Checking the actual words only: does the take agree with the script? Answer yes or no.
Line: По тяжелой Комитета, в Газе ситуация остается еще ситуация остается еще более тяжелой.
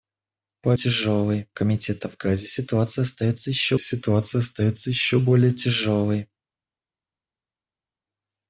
yes